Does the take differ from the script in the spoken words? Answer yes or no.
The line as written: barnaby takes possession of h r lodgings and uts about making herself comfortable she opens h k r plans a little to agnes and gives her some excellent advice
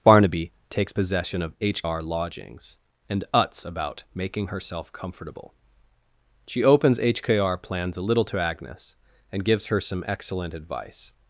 no